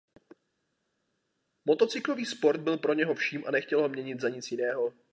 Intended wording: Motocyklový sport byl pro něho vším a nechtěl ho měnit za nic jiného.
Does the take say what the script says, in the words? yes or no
yes